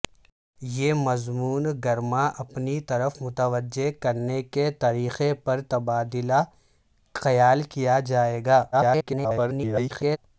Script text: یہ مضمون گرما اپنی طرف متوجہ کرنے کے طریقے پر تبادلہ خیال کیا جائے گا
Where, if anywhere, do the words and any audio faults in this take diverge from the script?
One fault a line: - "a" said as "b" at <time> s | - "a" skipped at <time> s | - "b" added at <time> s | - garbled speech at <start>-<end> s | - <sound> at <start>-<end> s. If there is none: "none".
- garbled speech at 8.7-10.2 s